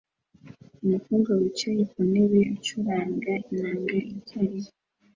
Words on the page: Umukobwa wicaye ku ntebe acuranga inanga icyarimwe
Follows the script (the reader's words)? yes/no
yes